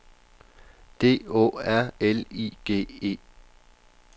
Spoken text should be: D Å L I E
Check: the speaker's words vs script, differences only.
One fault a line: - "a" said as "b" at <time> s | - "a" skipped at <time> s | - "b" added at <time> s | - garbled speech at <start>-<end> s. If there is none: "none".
- "R" added at 1.7 s
- "G" added at 2.6 s